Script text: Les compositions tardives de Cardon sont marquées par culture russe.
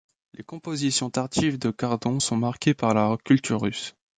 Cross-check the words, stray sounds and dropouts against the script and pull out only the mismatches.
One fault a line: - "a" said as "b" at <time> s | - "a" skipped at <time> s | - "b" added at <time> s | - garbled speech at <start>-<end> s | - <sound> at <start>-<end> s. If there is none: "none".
- "la" added at 2.9 s